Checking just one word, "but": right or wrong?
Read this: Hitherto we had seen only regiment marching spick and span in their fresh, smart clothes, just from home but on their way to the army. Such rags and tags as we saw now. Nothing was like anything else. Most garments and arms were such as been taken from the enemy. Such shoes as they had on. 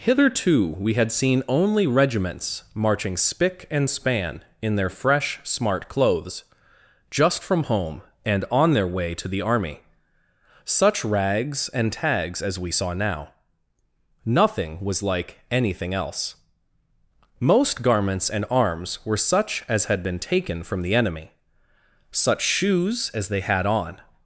wrong